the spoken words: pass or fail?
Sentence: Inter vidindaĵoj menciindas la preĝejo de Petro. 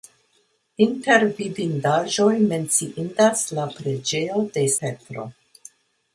pass